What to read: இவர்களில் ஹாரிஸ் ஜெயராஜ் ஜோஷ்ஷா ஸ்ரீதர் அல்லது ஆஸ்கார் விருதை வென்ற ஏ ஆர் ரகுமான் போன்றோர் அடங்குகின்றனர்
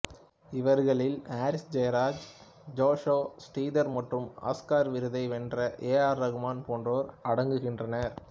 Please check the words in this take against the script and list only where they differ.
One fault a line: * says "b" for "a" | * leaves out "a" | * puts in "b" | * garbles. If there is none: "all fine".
* says "மற்றும்" for "அல்லது"